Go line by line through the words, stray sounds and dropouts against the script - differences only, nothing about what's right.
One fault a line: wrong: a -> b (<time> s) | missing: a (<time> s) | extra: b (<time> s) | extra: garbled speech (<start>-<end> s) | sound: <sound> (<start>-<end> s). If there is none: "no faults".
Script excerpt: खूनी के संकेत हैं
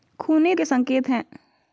no faults